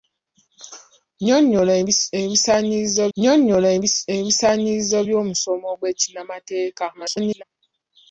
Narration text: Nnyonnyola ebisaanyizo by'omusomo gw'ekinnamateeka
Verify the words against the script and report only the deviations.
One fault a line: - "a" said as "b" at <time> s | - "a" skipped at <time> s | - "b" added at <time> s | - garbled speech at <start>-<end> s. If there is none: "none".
- "nnyonnyola ebisaanyizo" added at 3.1 s
- garbled speech at 6.9-7.4 s